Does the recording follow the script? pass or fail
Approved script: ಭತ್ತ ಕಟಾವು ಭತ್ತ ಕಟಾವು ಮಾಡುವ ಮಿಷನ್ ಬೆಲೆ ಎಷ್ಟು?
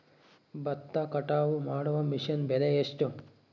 fail